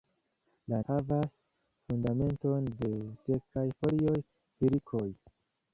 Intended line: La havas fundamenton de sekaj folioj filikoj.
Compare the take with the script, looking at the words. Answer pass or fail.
pass